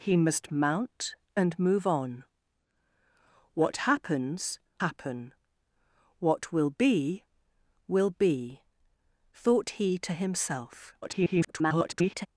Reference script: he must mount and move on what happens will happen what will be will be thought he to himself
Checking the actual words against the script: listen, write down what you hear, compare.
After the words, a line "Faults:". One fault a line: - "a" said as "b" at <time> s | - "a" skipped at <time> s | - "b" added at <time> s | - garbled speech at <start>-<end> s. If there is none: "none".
he must mount and move on what happens happen what will be will be thought he to himself [garbled]
Faults:
- "will" skipped at 4.6 s
- garbled speech at 11.0-12.3 s